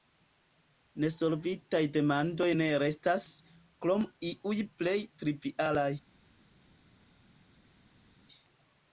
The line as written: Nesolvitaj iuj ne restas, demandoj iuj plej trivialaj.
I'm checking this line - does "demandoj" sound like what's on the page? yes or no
no